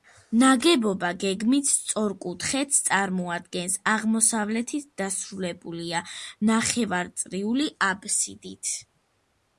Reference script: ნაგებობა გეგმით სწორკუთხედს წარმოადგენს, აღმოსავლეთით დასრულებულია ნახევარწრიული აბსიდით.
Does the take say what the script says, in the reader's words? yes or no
yes